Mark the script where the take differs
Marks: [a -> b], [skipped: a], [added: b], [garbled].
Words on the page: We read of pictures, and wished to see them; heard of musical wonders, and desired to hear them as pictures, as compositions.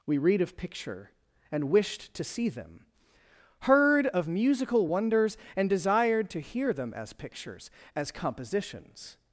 We read of [pictures, -> picture] and wished to see them; heard of musical wonders, and desired to hear them as pictures, as compositions.